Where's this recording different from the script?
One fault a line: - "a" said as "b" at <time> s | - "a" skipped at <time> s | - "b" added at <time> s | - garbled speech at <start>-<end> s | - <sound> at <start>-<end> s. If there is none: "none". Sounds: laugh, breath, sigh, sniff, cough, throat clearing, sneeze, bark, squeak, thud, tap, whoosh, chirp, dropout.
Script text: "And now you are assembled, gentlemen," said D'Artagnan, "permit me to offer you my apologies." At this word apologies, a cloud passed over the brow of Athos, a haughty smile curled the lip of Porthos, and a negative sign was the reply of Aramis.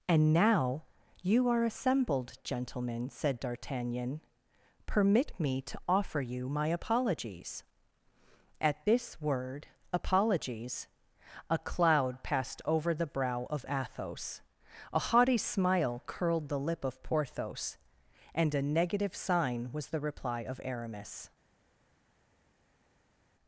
none